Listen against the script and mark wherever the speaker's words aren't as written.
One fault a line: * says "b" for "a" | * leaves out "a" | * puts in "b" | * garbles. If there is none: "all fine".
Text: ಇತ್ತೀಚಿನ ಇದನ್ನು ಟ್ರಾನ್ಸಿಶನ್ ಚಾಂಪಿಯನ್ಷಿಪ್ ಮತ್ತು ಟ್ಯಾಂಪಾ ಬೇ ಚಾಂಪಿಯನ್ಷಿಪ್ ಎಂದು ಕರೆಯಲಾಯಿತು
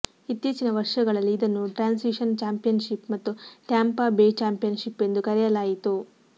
* puts in "ವರ್ಷಗಳಲ್ಲಿ"